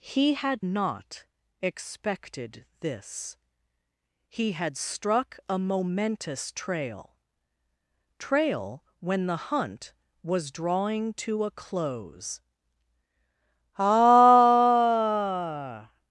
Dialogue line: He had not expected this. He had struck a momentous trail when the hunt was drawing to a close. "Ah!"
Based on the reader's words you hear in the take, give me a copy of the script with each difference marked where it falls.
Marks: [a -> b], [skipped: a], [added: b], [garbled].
He had not expected this. He had struck a momentous trail [added: trail] when the hunt was drawing to a close. "Ah!"